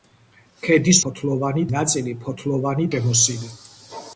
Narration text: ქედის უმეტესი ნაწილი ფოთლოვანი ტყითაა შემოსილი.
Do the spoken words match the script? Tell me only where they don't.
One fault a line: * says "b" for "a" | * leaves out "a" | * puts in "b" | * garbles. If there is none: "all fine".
* says "ფოთლოვანი" for "უმეტესი"
* leaves out "ტყითაა"